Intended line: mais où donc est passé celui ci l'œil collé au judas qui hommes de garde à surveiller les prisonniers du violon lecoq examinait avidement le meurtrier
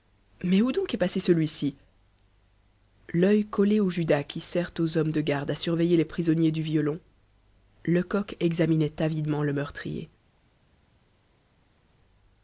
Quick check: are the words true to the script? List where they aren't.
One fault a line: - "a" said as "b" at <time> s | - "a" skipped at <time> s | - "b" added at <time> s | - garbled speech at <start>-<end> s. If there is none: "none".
- "sert aux" added at 4.4 s